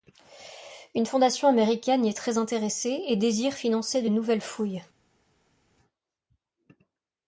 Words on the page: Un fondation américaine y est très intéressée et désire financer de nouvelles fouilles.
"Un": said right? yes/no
no